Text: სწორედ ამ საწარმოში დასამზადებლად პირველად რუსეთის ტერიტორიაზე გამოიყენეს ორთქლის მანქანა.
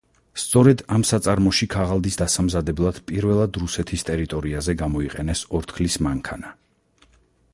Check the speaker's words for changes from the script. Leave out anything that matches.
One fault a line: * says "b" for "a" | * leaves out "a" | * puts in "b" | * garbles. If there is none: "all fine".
* puts in "ქაღალდის"